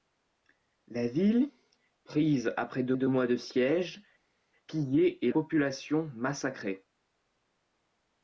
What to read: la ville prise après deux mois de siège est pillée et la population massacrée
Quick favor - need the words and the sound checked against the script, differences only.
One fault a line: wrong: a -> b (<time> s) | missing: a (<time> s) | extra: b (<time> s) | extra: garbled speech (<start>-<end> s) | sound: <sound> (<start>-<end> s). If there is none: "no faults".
extra: deux (2.9 s)
missing: est (4.0 s)
missing: la (5.3 s)